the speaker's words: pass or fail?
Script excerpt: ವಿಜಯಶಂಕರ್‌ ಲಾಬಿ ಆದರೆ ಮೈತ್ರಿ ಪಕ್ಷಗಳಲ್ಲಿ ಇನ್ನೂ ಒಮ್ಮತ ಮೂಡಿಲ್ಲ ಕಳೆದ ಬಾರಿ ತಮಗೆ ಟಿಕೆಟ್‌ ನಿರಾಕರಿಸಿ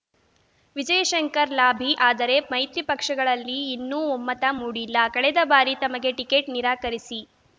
pass